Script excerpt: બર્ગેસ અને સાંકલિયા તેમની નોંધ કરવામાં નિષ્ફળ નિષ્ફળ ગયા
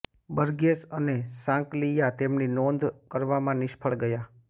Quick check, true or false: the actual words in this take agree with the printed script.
false